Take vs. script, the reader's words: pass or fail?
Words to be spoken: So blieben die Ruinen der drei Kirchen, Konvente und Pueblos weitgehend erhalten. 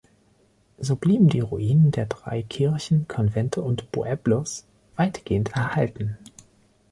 pass